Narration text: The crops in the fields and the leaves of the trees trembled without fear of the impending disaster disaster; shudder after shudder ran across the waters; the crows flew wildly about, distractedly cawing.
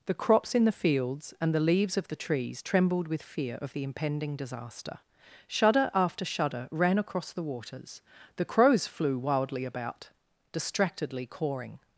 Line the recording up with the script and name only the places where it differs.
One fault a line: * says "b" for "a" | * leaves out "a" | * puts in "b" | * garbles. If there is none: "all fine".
* says "with" for "without"
* leaves out "disaster"